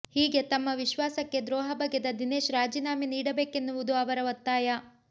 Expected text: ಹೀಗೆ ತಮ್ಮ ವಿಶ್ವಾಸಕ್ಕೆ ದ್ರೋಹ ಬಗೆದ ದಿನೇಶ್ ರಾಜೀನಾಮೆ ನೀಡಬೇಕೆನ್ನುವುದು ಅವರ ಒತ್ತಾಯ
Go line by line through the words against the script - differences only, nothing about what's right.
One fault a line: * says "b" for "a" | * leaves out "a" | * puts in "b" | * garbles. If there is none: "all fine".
all fine